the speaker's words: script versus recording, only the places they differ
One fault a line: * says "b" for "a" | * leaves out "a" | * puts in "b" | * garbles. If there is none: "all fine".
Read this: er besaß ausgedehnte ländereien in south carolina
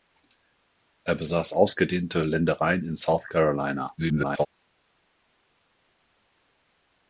* garbles